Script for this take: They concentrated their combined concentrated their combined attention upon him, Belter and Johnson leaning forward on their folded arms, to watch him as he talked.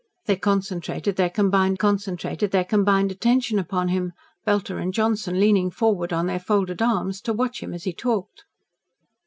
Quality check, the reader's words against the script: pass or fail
pass